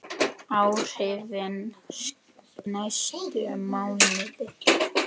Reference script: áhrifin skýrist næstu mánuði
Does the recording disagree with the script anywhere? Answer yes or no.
yes